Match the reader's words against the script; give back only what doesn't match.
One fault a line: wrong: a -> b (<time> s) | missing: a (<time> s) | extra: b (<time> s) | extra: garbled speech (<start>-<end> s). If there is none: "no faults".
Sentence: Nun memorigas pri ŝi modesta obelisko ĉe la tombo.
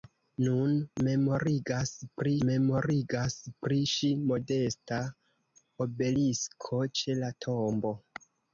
extra: memorigas pri (2.5 s)